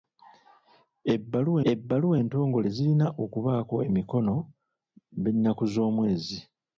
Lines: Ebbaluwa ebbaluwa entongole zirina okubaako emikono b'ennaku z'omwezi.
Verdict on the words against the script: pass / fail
pass